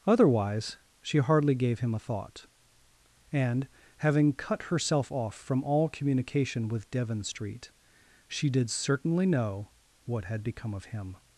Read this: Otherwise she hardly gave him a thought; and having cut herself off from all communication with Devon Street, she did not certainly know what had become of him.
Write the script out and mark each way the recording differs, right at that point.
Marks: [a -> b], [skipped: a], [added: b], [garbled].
Otherwise she hardly gave him a thought; and having cut herself off from all communication with Devon Street, she did [skipped: not] certainly know what had become of him.